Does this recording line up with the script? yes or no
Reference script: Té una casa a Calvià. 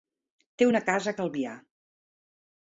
yes